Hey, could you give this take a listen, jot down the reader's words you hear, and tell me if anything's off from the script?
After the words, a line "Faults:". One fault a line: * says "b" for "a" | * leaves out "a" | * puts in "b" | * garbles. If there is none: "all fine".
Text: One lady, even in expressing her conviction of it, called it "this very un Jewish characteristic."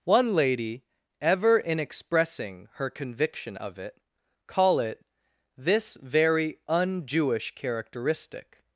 One lady, ever in expressing her conviction of it, call it "this very un Jewish characteristic."
Faults:
* says "ever" for "even"
* says "call" for "called"